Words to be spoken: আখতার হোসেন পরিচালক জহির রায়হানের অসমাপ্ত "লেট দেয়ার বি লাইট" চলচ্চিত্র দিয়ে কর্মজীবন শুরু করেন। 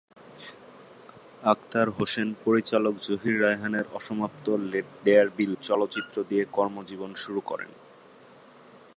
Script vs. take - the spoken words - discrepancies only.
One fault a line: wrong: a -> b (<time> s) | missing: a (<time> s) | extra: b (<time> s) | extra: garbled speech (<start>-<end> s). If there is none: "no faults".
missing: লাইট (5.5 s)